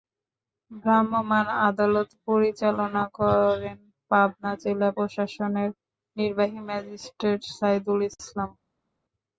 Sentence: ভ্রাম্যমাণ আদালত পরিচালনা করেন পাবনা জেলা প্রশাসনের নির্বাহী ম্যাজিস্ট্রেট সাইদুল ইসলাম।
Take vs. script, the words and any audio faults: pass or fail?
pass